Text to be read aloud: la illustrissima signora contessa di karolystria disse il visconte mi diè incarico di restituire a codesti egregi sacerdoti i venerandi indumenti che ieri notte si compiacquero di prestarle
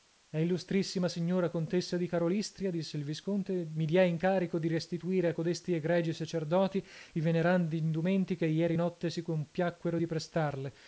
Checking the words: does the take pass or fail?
pass